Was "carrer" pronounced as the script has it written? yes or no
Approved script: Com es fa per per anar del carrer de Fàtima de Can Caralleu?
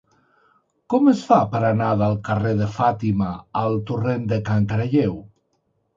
yes